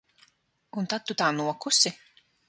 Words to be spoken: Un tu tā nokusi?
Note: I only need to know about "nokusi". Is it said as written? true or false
true